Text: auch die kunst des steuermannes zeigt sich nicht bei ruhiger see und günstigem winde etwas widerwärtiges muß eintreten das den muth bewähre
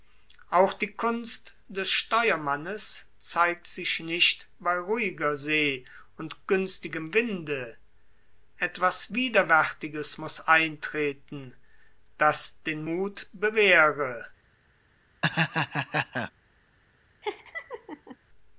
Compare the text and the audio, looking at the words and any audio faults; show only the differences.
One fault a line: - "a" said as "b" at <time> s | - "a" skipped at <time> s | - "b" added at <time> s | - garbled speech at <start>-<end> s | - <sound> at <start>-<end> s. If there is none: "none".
- laugh at 15.2-16.3 s
- laugh at 17.2-18.2 s